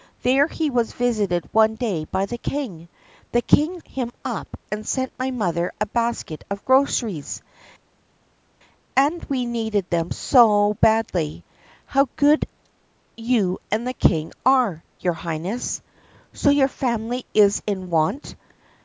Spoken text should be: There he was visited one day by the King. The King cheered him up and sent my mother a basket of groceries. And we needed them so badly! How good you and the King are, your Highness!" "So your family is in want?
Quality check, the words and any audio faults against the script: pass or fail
fail